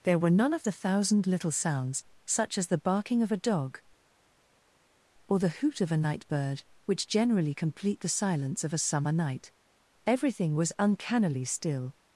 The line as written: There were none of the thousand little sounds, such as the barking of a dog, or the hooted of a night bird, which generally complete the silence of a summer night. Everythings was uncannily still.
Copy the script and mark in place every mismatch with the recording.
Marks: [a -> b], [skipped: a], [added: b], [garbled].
There were none of the thousand little sounds, such as the barking of a dog, or the [hooted -> hoot] of a night bird, which generally complete the silence of a summer night. [Everythings -> Everything] was uncannily still.